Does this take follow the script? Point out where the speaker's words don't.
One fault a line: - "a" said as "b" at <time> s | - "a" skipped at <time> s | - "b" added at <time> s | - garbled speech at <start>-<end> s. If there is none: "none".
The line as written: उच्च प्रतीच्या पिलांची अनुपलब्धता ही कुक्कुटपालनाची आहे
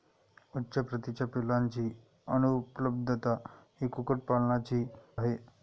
none